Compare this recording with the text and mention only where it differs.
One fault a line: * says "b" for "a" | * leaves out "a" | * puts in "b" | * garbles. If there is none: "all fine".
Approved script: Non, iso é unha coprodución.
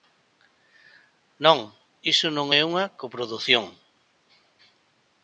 * puts in "non"